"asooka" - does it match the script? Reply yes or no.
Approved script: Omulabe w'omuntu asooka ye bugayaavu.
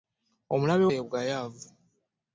no